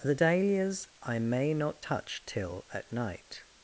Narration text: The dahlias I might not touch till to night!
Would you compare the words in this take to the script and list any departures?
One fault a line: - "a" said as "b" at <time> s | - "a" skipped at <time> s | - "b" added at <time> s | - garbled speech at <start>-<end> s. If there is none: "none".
- "might" said as "may" at 1.2 s
- "to" said as "at" at 2.7 s